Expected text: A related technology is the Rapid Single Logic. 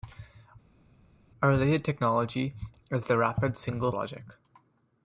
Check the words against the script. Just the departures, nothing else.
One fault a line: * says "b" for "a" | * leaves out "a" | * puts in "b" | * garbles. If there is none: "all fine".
all fine